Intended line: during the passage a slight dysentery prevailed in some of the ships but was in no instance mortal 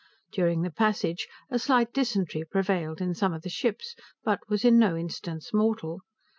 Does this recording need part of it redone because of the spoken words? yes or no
no